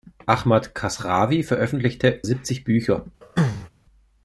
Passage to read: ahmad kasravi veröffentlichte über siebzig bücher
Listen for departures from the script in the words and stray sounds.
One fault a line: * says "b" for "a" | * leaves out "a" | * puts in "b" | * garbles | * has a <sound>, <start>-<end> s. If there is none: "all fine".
* leaves out "über"
* has a throat clearing, 3.2-3.7 s